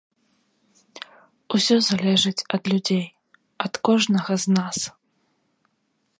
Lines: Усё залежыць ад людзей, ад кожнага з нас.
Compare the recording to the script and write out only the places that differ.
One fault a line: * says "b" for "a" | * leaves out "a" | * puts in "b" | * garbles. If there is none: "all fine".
all fine